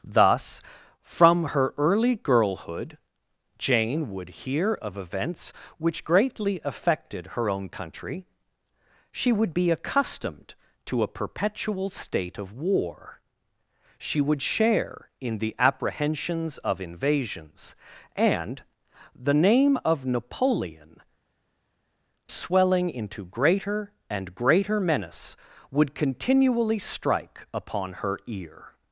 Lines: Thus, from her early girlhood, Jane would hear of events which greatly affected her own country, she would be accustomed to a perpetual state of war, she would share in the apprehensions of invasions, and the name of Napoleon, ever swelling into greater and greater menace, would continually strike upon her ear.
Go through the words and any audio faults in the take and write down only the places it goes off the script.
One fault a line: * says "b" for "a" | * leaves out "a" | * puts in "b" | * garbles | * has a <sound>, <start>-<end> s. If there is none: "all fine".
* leaves out "ever"